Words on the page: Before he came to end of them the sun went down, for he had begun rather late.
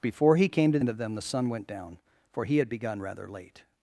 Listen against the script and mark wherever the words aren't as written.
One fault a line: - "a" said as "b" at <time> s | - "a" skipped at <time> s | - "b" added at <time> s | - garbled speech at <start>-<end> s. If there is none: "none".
none